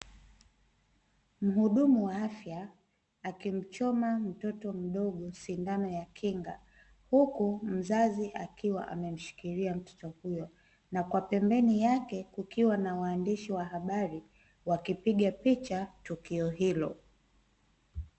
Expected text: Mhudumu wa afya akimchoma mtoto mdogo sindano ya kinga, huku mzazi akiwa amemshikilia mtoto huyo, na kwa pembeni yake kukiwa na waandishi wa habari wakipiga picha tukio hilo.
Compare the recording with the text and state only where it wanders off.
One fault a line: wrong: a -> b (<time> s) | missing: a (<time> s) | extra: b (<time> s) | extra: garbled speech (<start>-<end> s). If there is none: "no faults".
no faults